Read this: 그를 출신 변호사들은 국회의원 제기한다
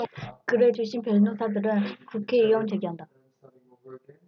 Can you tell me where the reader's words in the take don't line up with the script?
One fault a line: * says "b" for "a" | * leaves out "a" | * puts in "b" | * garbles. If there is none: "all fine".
all fine